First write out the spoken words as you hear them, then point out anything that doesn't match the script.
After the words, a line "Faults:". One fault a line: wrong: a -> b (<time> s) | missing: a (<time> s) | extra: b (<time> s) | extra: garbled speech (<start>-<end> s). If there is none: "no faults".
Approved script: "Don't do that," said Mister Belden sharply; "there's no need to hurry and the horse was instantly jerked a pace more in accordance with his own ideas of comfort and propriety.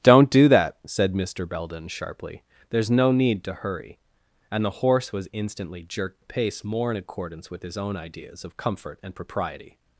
"Don't do that," said Mister Belden sharply; "there's no need to hurry and the horse was instantly jerked a pace more in accordance with his own ideas of comfort and propriety.
Faults:
no faults